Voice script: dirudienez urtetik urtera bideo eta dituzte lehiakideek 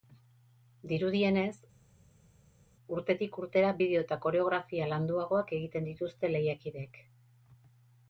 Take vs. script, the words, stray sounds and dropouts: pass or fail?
fail